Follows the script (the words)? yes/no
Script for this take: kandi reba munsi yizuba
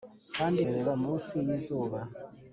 yes